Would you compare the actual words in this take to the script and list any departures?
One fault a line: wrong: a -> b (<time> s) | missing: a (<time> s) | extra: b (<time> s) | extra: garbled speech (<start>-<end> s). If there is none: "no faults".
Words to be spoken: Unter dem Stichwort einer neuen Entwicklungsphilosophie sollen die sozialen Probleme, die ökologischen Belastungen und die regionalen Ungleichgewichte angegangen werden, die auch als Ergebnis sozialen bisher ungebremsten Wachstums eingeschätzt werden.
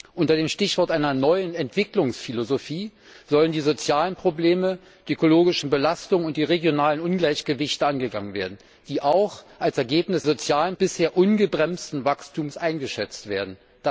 no faults